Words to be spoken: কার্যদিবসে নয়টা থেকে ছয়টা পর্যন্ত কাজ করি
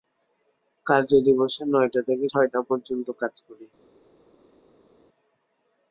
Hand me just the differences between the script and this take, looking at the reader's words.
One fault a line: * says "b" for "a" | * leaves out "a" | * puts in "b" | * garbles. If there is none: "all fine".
all fine